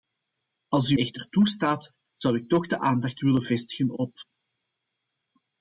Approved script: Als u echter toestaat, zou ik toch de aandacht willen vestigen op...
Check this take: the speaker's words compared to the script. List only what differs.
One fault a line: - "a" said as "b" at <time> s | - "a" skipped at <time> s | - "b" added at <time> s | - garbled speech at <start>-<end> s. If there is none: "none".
none